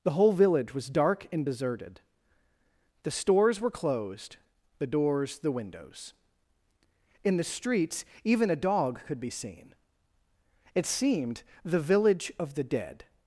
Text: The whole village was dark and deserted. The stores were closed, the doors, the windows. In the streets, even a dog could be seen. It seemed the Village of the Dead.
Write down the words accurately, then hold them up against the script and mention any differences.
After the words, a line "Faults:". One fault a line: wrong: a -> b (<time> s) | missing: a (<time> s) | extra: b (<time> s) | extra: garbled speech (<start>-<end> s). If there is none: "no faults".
The whole village was dark and deserted. The stores were closed, the doors, the windows. In the streets, even a dog could be seen. It seemed the Village of the Dead.
Faults:
no faults